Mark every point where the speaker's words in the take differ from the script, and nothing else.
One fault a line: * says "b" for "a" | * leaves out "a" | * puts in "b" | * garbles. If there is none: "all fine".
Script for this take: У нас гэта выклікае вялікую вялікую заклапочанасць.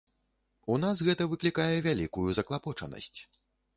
* leaves out "вялікую"